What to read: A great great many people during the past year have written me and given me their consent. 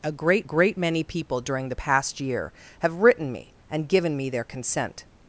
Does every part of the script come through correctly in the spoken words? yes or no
yes